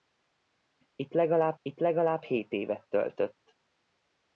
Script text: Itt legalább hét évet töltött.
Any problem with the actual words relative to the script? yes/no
yes